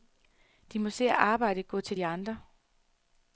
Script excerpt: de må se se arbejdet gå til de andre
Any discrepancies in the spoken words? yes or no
yes